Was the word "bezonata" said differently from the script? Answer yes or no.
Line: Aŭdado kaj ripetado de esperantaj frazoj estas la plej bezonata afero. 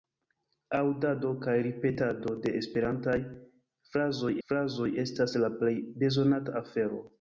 no